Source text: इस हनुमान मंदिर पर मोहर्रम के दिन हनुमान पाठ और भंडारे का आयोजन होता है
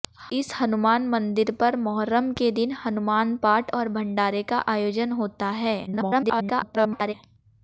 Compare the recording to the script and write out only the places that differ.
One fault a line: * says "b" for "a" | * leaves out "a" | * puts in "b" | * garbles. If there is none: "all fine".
* garbles